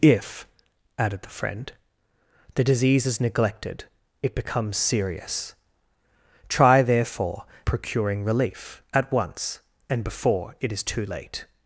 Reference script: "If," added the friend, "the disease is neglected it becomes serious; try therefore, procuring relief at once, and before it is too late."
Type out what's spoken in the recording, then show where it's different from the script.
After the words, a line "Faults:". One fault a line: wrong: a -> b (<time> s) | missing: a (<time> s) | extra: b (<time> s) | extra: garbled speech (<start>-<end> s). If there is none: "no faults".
"If," added the friend, "the disease is neglected it becomes serious; try therefore, procuring relief at once, and before it is too late."
Faults:
no faults